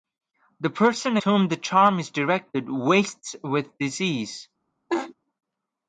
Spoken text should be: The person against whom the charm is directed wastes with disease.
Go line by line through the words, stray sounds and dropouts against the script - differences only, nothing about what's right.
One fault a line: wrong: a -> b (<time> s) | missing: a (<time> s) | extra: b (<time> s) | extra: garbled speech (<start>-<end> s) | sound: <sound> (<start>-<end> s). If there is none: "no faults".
missing: against (1.2 s)
sound: laugh (4.9-5.1 s)